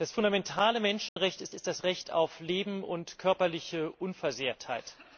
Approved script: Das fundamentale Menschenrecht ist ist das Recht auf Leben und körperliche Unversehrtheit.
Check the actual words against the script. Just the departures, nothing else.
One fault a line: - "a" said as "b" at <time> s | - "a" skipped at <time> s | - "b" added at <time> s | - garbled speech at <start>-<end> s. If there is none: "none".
none